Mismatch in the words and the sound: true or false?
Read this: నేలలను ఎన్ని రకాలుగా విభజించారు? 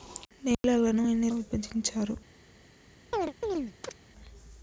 true